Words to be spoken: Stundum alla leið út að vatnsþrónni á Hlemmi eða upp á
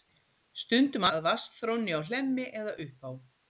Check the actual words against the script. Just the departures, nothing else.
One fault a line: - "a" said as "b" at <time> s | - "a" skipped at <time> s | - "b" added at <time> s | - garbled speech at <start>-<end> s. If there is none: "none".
- "alla leið út" skipped at 1.1 s